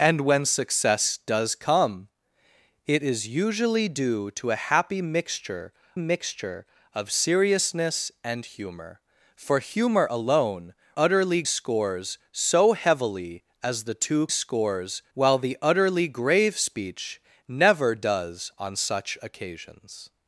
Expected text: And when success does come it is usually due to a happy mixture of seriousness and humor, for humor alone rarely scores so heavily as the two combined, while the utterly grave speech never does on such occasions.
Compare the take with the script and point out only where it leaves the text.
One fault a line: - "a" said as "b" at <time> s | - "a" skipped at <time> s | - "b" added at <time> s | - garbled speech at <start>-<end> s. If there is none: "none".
- "mixture" added at 6.0 s
- "rarely" said as "utterly" at 11.0 s
- "combined" said as "scores" at 14.3 s